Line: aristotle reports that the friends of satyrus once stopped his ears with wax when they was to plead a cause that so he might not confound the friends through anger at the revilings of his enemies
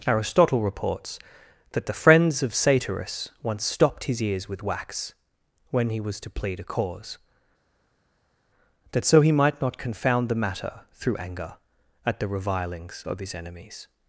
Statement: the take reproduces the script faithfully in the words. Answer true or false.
false